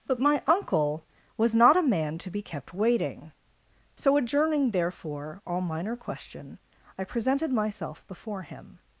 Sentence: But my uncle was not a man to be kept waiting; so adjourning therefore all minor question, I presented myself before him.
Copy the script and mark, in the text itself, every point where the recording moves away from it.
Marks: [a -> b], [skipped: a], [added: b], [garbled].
But my uncle was not a man to be kept waiting; so adjourning therefore all minor question, I presented myself before him.